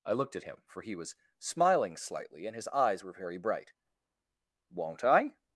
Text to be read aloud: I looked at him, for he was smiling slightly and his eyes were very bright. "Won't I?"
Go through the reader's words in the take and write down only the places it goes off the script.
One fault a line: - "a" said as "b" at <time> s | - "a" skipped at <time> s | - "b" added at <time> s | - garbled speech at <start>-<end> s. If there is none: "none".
none